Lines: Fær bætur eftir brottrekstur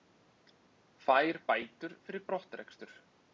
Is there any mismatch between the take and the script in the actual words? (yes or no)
yes